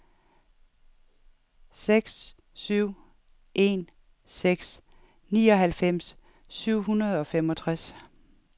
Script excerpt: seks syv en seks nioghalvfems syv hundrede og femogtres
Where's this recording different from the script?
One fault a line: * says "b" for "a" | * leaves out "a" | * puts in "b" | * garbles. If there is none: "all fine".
all fine